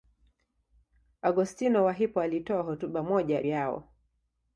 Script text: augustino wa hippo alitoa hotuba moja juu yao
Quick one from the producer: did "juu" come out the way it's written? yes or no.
no